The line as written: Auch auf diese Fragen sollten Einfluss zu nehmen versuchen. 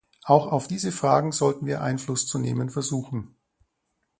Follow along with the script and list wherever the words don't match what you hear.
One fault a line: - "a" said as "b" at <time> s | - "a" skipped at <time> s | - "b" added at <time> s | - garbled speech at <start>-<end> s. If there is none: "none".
- "wir" added at 1.7 s